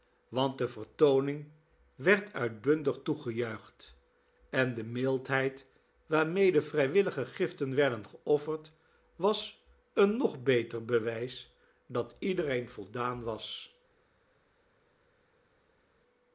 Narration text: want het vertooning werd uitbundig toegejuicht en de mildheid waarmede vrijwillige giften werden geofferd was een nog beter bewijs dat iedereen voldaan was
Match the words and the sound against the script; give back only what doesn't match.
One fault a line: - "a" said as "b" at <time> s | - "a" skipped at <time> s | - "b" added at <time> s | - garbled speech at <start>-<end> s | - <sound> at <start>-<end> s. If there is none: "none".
- "het" said as "de" at 0.6 s